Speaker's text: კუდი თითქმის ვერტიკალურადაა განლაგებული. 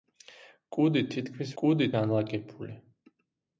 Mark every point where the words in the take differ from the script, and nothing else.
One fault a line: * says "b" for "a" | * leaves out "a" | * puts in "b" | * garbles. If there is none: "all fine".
* says "კუდი" for "ვერტიკალურადაა"